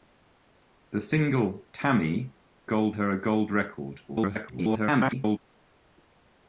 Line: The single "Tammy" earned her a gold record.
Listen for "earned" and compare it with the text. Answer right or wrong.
wrong